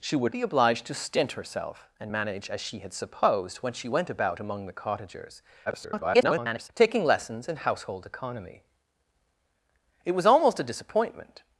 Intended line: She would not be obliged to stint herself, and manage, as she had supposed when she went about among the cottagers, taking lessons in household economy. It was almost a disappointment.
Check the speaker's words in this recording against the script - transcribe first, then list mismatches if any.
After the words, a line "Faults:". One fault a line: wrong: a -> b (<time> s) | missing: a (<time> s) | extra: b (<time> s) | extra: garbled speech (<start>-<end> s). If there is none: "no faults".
She would be obliged to stint herself, and manage, as she had supposed when she went about among the cottagers, [garbled] taking lessons in household economy. It was almost a disappointment.
Faults:
missing: not (0.3 s)
extra: garbled speech (5.7-6.7 s)